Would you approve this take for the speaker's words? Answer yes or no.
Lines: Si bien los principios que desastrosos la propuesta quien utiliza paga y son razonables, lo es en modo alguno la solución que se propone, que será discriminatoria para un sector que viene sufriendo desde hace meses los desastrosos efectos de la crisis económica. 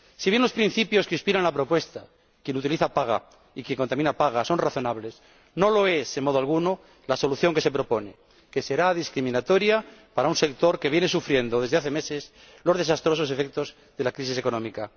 no